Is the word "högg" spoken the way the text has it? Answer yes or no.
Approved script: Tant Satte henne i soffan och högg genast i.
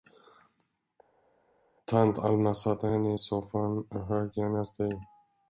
yes